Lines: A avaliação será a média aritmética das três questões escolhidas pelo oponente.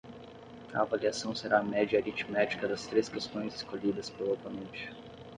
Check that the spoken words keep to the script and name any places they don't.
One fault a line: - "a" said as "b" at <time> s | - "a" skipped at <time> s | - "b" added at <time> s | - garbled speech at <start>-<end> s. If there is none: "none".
none